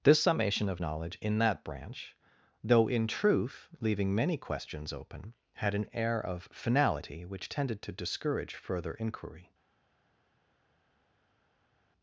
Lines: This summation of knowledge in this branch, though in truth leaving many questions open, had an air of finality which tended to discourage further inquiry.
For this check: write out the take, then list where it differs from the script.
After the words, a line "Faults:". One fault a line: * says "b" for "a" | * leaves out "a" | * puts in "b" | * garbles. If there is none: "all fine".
This summation of knowledge in that branch, though in truth leaving many questions open, had an air of finality which tended to discourage further inquiry.
Faults:
* says "that" for "this"